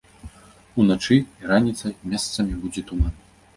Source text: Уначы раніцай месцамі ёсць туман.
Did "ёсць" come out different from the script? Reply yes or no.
yes